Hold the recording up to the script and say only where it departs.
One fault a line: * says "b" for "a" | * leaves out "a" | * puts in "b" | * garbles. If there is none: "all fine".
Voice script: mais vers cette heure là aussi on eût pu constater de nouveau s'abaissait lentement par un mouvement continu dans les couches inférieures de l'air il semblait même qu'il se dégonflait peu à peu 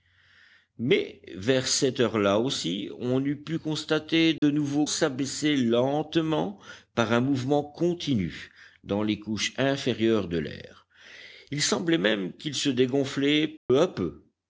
all fine